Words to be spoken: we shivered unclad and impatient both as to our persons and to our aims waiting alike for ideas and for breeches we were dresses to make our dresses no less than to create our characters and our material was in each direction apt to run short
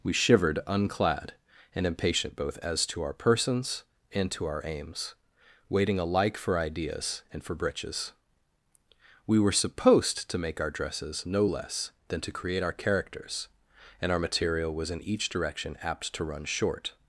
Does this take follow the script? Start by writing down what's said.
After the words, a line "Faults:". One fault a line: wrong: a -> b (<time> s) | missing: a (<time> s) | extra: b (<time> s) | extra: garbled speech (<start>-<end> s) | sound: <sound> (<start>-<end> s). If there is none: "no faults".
we shivered unclad and impatient both as to our persons and to our aims waiting alike for ideas and for breeches we were supposed to make our dresses no less than to create our characters and our material was in each direction apt to run short
Faults:
wrong: dresses -> supposed (9.5 s)